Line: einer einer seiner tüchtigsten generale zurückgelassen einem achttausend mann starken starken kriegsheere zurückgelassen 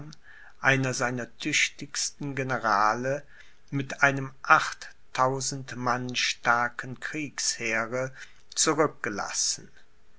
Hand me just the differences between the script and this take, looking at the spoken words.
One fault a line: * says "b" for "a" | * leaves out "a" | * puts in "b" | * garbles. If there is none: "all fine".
* leaves out "einer"
* says "mit" for "zurückgelassen"
* leaves out "starken"